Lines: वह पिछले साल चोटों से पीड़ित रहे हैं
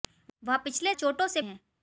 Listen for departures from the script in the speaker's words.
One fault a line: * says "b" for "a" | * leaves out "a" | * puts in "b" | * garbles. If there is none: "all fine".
* leaves out "साल"
* leaves out "पीड़ित रहे"